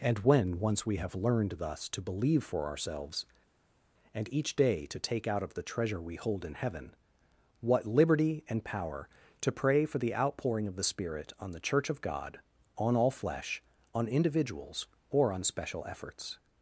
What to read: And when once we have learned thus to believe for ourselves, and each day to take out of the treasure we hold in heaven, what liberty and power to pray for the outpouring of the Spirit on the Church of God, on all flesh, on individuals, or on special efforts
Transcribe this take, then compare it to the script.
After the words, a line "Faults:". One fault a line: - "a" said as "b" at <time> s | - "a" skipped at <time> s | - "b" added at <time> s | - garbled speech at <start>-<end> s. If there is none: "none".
And when once we have learned thus to believe for ourselves, and each day to take out of the treasure we hold in heaven, what liberty and power to pray for the outpouring of the Spirit on the Church of God, on all flesh, on individuals, or on special efforts
Faults:
none